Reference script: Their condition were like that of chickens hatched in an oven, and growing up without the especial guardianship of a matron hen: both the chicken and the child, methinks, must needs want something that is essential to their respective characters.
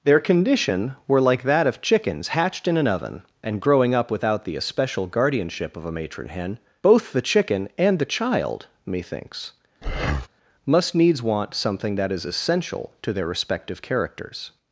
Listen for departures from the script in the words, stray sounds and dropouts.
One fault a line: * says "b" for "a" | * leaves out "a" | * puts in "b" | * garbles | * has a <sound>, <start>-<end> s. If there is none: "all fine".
* has a breath, 9.8-10.3 s